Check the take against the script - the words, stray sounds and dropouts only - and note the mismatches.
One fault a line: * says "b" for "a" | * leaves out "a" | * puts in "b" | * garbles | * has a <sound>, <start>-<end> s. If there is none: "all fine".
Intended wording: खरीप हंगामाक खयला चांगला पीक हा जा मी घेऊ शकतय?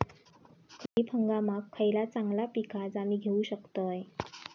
* has a dropout, 0.9-1.0 s